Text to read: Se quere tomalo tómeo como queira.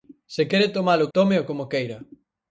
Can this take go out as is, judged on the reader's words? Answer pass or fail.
pass